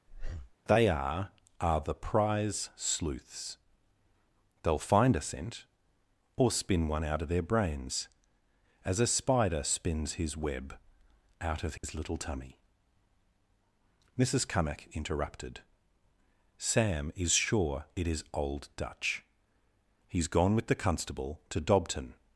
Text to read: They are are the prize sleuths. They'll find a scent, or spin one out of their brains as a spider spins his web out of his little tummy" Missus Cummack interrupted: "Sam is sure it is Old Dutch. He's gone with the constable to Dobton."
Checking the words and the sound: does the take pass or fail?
fail